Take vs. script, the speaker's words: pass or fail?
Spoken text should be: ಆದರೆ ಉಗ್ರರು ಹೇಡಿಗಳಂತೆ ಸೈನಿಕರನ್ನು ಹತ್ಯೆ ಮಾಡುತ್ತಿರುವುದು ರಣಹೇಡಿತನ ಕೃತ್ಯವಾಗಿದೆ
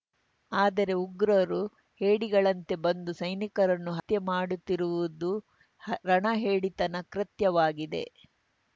fail